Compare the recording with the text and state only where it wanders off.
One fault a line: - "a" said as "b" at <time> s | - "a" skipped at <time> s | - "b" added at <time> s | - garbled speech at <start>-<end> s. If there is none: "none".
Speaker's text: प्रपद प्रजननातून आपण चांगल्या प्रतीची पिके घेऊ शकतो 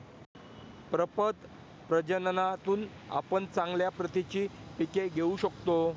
none